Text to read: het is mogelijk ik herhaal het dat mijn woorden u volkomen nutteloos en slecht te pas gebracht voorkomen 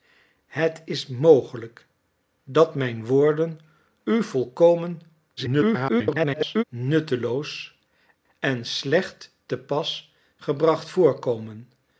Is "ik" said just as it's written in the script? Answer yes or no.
no